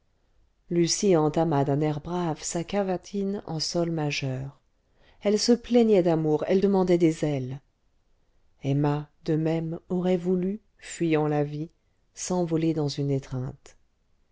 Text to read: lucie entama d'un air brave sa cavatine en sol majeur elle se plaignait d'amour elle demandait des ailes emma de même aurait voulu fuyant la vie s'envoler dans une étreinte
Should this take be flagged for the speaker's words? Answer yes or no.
no